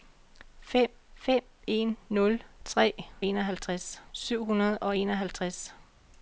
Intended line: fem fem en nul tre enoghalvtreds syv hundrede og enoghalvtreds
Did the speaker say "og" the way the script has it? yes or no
yes